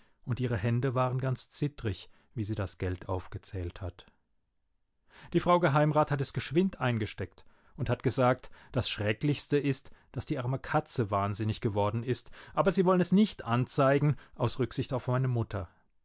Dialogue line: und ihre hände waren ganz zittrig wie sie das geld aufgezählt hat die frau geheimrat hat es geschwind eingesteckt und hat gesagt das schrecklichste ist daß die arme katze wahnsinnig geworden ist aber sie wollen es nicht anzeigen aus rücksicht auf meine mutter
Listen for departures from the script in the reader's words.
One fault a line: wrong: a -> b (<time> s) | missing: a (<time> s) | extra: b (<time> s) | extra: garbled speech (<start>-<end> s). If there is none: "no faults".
no faults